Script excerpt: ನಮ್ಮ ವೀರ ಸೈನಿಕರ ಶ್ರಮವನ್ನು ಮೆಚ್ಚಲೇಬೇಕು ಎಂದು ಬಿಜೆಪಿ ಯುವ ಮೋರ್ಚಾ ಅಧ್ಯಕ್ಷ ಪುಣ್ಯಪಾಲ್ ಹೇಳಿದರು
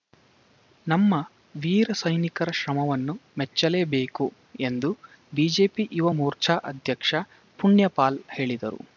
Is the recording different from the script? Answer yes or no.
no